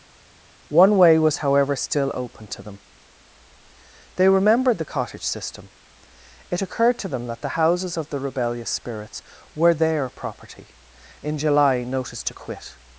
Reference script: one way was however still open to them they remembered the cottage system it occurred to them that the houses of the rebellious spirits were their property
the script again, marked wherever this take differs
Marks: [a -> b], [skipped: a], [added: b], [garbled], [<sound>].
one way was however still open to them they remembered the cottage system it occurred to them that the houses of the rebellious spirits were their property [added: in july notice to quit]